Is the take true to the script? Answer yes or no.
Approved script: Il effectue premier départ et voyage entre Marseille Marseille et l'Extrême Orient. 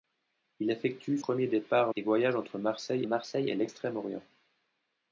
yes